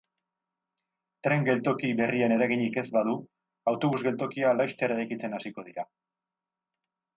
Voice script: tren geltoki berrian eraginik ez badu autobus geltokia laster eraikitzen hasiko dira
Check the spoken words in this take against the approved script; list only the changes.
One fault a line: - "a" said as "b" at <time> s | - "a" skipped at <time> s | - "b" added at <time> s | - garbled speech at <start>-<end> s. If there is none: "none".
none